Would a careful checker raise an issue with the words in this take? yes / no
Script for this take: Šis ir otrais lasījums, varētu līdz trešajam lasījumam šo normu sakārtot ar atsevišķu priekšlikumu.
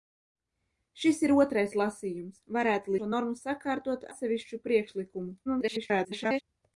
yes